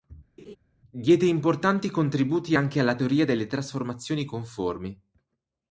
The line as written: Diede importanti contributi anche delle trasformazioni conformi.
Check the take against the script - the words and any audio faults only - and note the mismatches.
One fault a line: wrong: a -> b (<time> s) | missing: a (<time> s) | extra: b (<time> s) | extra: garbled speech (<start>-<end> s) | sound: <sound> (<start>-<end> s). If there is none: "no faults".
sound: laugh (0.4-0.6 s)
extra: alla teoria (2.8 s)